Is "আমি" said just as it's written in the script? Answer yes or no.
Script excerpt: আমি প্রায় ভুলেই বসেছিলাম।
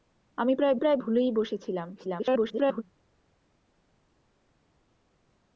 yes